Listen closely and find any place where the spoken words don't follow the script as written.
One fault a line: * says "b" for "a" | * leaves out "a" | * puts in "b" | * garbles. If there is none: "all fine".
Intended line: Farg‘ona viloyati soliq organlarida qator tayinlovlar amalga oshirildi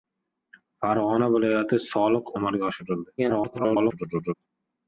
* leaves out "organlarida qator tayinlovlar"
* garbles